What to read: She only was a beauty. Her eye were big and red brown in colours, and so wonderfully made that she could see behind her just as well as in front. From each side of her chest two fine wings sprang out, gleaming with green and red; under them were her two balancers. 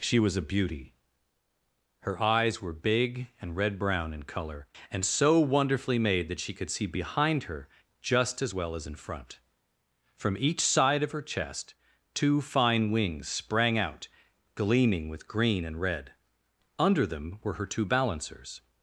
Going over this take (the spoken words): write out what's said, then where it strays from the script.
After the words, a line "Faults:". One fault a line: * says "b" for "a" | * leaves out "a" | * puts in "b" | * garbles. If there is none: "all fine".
She was a beauty. Her eyes were big and red brown in colour, and so wonderfully made that she could see behind her just as well as in front. From each side of her chest two fine wings sprang out, gleaming with green and red; under them were her two balancers.
Faults:
* leaves out "only"
* says "eyes" for "eye"
* says "colour" for "colours"